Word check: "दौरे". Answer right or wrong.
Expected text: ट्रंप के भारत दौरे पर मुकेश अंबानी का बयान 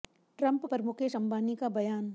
wrong